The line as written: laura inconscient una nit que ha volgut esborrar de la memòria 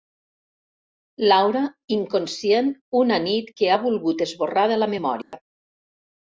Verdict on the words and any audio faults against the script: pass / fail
fail